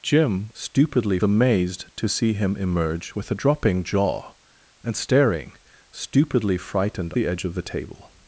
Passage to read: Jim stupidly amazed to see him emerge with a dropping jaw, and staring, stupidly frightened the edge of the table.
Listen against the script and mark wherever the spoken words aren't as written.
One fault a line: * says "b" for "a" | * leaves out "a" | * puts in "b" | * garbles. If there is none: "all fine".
all fine